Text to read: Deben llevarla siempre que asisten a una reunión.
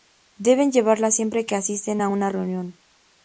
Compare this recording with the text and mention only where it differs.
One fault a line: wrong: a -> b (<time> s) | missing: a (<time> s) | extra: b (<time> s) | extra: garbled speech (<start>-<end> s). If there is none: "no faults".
no faults